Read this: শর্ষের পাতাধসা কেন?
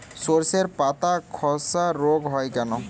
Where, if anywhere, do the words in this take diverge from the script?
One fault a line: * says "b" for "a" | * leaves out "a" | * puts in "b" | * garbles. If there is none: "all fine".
* puts in "রোগ হয়"